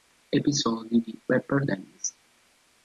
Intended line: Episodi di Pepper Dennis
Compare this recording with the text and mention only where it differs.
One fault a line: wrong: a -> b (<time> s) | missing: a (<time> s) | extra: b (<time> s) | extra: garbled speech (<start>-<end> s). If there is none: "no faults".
no faults